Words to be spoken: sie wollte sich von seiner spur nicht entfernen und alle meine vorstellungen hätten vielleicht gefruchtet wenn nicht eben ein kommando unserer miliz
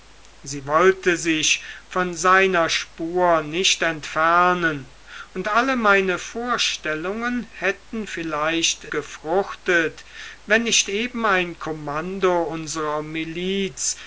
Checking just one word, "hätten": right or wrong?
right